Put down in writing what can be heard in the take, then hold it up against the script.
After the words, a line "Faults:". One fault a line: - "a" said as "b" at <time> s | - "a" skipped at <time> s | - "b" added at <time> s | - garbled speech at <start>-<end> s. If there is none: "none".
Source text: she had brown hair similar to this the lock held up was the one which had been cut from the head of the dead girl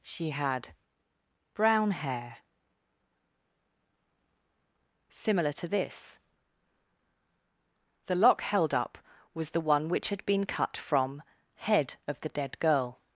she had brown hair similar to this the lock held up was the one which had been cut from head of the dead girl
Faults:
- "the" skipped at 11.2 s